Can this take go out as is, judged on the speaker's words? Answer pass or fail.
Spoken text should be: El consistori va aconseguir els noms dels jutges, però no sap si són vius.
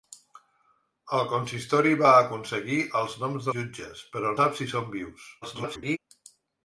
fail